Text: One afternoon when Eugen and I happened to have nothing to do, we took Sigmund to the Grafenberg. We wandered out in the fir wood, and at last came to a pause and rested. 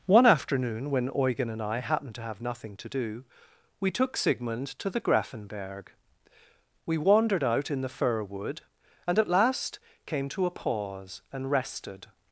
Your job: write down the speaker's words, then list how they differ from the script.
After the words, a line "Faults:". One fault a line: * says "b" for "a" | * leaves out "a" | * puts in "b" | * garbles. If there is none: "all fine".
One afternoon when Eugen and I happened to have nothing to do, we took Sigmund to the Grafenberg. We wandered out in the fir wood, and at last came to a pause and rested.
Faults:
all fine